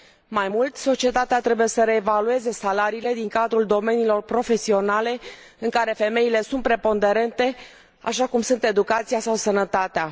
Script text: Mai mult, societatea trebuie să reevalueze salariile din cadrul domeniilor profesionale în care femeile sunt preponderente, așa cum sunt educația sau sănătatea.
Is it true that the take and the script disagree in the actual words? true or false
false